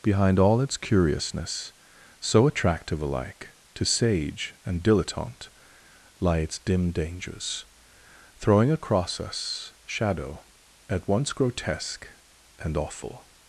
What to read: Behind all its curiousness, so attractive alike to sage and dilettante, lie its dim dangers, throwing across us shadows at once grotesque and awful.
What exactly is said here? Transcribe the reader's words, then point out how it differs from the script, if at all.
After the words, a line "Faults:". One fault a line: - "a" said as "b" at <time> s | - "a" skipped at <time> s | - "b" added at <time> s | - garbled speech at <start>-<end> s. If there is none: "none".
Behind all its curiousness, so attractive alike to sage and dilettante, lie its dim dangers, throwing across us shadow at once grotesque and awful.
Faults:
- "shadows" said as "shadow" at 9.8 s